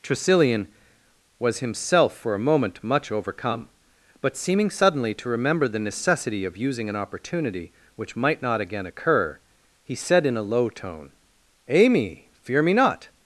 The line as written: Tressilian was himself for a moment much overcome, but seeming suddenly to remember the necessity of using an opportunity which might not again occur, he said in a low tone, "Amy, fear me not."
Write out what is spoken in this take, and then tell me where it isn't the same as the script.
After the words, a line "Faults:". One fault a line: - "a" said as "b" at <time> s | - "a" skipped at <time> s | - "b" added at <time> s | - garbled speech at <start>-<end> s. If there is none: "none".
Tressilian was himself for a moment much overcome, but seeming suddenly to remember the necessity of using an opportunity which might not again occur, he said in a low tone, "Amy, fear me not."
Faults:
none